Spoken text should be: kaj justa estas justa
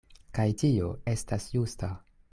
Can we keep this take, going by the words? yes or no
no